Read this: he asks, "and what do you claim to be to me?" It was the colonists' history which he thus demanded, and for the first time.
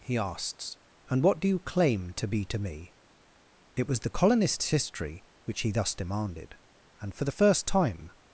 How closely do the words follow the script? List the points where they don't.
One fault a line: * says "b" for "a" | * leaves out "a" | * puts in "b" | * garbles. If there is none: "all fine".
all fine